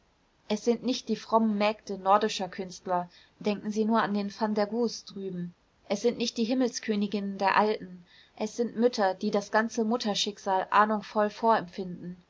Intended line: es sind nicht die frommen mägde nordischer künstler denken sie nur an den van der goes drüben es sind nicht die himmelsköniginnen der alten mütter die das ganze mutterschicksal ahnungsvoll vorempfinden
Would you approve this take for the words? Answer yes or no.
no